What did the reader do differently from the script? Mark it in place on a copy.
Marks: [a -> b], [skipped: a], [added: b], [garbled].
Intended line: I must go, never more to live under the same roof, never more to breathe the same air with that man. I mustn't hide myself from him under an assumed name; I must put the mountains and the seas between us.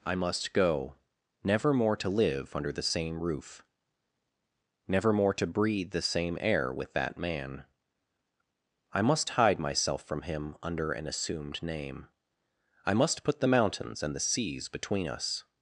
I must go, never more to live under the same roof, never more to breathe the same air with that man. I [mustn't -> must] hide myself from him under an assumed name; I must put the mountains and the seas between us.